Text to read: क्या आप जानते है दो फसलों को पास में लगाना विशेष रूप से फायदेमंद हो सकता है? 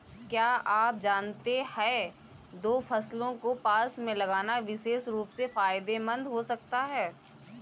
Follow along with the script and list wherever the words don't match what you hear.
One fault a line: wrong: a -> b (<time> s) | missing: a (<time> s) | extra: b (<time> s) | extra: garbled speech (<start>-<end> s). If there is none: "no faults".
no faults